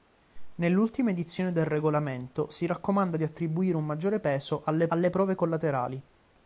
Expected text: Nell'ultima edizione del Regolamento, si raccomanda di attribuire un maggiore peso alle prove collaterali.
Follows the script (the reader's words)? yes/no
no